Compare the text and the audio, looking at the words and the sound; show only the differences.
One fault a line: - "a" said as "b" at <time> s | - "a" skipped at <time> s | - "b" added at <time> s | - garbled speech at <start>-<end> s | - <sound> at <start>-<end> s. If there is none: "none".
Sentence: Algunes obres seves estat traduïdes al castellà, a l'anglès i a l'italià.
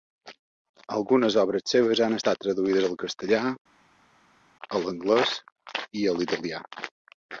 - "han" added at 2.1 s